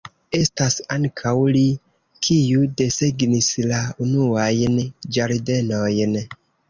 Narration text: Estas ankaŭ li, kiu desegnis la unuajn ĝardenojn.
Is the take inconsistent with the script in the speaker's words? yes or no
no